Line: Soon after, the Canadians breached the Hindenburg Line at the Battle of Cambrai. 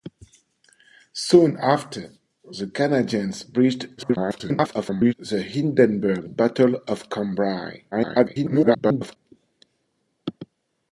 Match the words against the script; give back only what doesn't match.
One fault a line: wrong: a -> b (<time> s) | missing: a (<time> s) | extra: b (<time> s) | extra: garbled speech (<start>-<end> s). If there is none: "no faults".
extra: garbled speech (4.0-5.1 s)
missing: Line at the (6.3 s)
extra: garbled speech (7.9-9.2 s)